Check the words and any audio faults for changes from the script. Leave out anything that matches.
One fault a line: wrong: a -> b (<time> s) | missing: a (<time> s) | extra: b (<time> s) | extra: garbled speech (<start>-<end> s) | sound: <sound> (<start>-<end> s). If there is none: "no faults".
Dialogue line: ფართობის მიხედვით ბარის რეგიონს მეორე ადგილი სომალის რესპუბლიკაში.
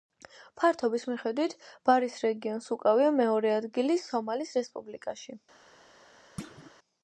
extra: უკავია (2.8 s)
sound: thud (6.4-6.7 s)